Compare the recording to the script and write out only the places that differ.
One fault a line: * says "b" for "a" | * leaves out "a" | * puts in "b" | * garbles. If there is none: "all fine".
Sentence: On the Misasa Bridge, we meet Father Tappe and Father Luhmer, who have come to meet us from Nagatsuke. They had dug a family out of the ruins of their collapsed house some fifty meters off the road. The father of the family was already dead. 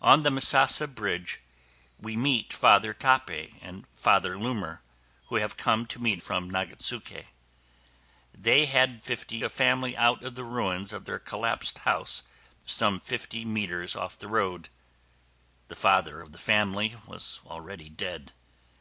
* leaves out "us"
* says "fifty" for "dug"